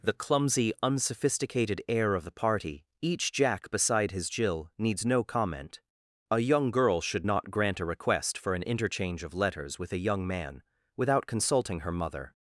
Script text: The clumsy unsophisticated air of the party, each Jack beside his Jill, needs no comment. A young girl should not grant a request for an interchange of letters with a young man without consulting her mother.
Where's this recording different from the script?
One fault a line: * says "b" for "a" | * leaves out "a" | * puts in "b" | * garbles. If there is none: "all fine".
all fine